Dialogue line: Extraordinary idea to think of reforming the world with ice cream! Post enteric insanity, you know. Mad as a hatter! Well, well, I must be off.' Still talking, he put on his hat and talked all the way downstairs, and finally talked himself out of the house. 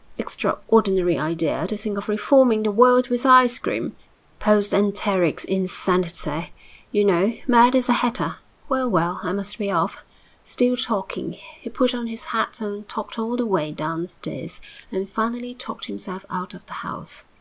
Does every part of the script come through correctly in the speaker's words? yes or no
yes